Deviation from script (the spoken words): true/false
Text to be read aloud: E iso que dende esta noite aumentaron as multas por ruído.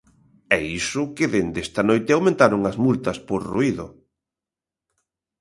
false